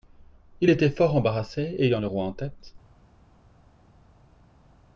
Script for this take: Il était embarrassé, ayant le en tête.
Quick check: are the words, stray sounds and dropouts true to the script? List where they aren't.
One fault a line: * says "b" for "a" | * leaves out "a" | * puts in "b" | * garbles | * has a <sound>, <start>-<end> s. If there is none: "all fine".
* puts in "fort"
* puts in "roi"